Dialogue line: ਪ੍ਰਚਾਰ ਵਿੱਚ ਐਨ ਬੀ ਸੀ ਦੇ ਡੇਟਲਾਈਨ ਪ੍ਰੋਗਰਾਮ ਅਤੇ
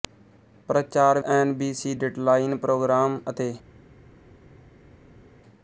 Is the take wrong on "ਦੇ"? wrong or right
wrong